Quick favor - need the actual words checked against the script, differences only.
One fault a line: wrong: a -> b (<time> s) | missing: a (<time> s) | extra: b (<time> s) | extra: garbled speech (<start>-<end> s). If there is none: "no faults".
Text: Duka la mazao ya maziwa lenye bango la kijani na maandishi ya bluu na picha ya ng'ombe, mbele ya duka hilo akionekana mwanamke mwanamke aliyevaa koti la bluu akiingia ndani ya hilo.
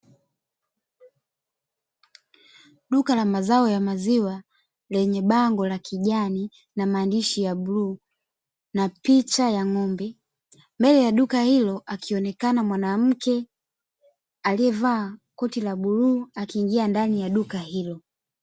missing: mwanamke (13.5 s)
extra: duka (17.3 s)